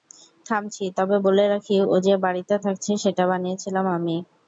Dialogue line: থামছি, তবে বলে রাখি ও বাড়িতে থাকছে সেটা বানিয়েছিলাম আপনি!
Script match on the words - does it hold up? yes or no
no